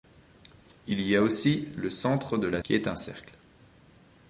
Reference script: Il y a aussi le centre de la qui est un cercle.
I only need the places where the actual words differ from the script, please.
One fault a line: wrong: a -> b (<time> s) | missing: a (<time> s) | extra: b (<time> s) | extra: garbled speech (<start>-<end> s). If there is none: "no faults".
no faults